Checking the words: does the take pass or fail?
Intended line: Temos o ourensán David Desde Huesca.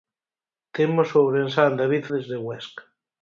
pass